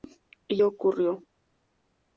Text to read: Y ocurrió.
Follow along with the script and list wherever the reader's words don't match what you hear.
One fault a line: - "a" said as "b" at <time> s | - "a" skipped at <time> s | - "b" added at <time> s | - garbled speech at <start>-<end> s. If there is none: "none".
none